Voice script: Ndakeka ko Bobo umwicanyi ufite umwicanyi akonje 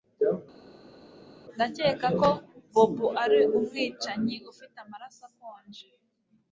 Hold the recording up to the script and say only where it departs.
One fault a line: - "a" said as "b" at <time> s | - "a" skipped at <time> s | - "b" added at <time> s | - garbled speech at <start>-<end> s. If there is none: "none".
- "ari" added at 3.2 s
- "umwicanyi" said as "amaraso" at 4.8 s